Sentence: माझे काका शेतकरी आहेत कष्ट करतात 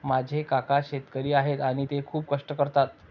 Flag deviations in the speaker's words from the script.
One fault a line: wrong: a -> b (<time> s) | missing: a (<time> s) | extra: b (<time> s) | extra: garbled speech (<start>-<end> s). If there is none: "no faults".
extra: आणि ते खूप (1.6 s)